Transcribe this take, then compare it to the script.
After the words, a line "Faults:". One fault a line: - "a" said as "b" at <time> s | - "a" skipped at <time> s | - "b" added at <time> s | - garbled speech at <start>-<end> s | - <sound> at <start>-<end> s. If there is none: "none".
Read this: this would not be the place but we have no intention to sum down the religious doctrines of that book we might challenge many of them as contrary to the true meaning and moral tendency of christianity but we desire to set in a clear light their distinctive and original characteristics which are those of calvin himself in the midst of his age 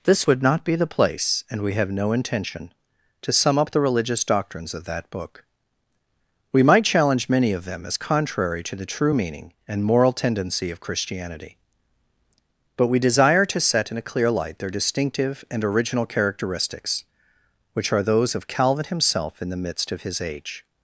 this would not be the place and we have no intention to sum up the religious doctrines of that book we might challenge many of them as contrary to the true meaning and moral tendency of christianity but we desire to set in a clear light their distinctive and original characteristics which are those of calvin himself in the midst of his age
Faults:
- "but" said as "and" at 1.5 s
- "down" said as "up" at 3.6 s